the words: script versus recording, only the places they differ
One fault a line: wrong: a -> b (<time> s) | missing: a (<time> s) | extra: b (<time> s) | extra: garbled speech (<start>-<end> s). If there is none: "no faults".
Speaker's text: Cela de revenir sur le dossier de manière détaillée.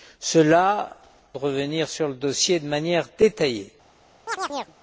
no faults